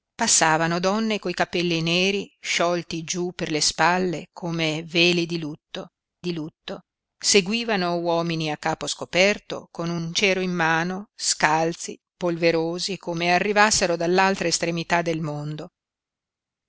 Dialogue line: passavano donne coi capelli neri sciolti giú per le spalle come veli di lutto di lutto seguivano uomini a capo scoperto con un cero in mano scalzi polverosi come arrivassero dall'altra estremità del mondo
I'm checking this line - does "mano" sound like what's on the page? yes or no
yes